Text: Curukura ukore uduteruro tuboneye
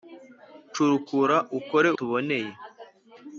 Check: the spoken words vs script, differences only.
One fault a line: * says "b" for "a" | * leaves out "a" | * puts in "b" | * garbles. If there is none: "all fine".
* leaves out "uduteruro"